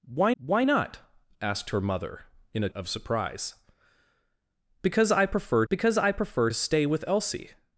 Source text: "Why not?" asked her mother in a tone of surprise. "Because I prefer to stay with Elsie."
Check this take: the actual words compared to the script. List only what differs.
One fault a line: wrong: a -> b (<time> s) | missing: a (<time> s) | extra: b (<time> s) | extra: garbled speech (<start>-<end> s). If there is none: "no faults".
extra: why (0.4 s)
missing: tone (2.7 s)
extra: because I prefer (5.7 s)